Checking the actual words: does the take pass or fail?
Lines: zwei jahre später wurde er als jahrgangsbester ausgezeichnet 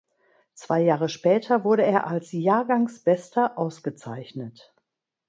pass